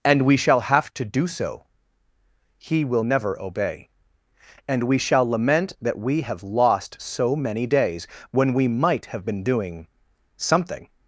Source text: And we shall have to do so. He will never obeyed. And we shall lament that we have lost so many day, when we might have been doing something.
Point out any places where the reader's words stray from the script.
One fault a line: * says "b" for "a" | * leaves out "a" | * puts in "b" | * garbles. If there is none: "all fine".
* says "obey" for "obeyed"
* says "days" for "day"